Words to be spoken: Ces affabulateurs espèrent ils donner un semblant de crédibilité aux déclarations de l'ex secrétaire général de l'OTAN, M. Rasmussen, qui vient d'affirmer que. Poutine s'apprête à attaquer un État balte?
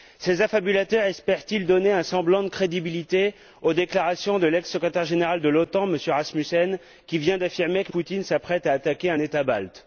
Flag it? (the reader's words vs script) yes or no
no